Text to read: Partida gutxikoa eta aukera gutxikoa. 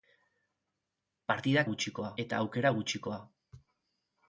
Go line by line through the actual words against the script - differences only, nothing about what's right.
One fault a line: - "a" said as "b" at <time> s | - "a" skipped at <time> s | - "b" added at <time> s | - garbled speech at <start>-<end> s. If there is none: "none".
none